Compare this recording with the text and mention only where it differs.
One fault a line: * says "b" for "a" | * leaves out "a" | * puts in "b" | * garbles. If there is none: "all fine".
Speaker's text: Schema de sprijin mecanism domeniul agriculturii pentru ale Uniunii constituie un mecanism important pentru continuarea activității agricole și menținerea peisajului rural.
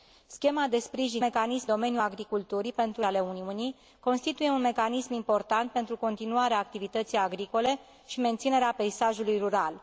all fine